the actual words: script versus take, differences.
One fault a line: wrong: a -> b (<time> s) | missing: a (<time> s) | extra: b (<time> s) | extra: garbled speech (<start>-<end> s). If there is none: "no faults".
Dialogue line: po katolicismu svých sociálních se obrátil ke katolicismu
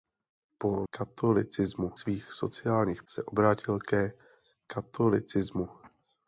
no faults